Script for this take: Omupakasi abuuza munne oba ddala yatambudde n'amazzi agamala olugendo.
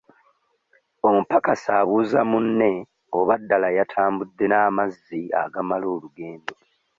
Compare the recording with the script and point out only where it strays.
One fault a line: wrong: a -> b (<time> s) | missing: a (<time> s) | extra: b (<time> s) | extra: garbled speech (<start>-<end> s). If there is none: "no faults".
no faults